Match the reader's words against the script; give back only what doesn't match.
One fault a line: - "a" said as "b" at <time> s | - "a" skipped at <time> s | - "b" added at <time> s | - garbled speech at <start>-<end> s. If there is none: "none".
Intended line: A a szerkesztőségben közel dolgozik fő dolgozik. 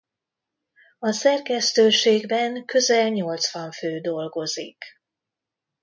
- "a" skipped at 1.1 s
- "dolgozik" said as "nyolcvan" at 3.1 s